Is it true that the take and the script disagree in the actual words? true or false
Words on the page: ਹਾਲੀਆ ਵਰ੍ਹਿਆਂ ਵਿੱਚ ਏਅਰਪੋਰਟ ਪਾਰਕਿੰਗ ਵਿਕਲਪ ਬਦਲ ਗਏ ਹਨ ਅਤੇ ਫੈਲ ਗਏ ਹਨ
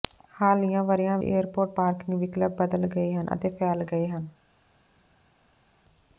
true